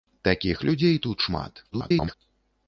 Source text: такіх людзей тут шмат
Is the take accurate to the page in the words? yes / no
no